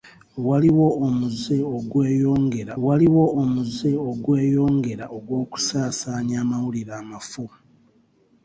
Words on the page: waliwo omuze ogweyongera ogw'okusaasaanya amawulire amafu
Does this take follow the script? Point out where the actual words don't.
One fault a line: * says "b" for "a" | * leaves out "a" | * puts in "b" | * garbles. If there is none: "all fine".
* puts in "waliwo omuze ogweyongera"